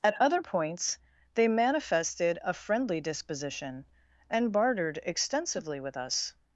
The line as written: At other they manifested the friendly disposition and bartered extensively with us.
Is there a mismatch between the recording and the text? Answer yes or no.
yes